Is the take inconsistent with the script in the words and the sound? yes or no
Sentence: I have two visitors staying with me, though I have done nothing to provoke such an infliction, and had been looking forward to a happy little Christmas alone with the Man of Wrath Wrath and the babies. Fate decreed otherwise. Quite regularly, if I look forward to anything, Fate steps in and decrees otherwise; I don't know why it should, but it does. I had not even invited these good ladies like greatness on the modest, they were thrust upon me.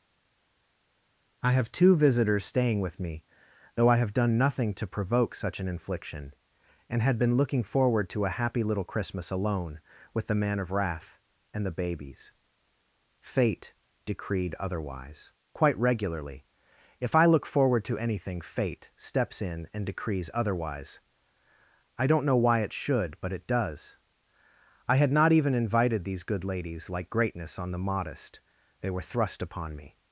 yes